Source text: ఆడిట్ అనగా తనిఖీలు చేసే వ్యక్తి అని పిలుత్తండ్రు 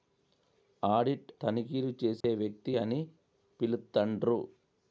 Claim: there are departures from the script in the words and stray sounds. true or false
true